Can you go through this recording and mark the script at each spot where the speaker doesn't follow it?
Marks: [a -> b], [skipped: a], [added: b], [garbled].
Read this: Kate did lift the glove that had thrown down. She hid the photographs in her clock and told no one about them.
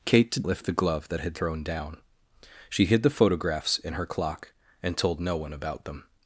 Kate did lift the glove that had thrown down. She hid the photographs in her clock and told no one about them.